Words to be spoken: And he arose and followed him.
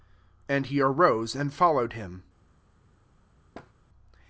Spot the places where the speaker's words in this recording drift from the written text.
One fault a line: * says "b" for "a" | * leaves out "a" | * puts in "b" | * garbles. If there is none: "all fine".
all fine